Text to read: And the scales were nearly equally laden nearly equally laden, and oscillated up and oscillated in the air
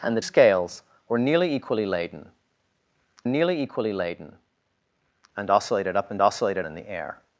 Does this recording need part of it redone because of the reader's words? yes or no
no